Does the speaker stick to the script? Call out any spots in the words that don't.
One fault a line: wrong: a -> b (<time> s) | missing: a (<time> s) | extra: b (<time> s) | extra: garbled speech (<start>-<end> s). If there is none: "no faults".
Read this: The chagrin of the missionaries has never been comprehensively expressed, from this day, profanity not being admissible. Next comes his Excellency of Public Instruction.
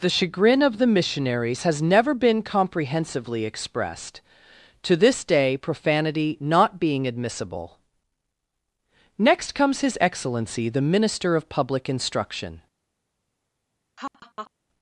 wrong: from -> to (4.8 s)
extra: the Minister (10.7 s)